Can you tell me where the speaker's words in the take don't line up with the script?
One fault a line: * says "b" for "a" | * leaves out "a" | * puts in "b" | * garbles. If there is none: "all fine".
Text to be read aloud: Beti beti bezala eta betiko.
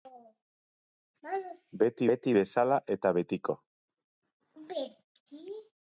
all fine